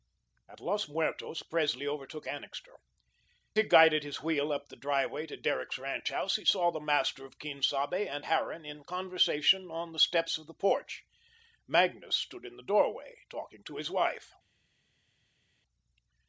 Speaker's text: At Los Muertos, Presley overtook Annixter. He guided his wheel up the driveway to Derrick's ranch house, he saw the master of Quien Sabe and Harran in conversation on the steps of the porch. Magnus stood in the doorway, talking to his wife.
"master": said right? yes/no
yes